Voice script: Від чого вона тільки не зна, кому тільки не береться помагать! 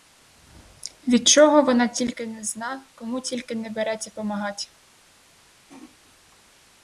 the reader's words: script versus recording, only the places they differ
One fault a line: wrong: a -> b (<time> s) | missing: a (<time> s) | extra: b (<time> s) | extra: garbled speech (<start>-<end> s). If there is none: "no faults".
no faults